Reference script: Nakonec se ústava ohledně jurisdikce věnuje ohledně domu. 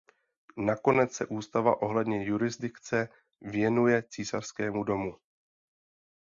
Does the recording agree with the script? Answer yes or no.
no